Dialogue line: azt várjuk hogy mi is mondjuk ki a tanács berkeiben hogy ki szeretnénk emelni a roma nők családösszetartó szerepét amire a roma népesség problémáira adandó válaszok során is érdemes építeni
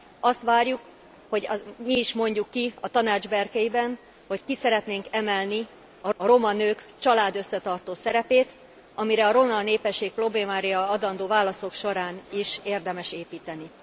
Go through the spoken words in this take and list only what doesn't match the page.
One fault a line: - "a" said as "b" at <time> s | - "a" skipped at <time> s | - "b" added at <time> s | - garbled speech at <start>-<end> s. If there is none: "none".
- "a" added at 6.2 s